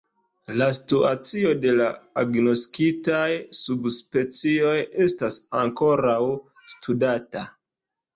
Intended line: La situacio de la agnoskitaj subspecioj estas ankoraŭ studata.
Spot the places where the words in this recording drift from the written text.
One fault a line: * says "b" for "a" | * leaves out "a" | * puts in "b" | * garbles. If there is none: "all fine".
all fine